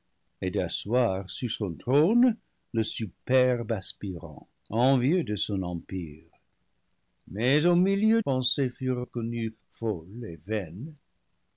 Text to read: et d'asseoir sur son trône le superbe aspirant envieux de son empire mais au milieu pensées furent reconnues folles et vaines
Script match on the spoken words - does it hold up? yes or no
yes